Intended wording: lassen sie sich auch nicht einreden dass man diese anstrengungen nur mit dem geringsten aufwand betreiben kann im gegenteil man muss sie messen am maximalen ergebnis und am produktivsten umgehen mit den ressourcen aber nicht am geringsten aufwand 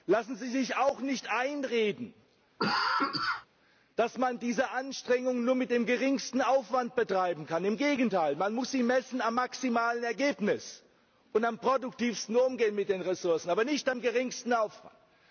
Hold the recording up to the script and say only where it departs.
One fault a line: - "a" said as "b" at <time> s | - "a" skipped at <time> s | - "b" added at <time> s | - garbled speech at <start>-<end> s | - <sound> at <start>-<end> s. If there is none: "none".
- cough at 2.6-3.5 s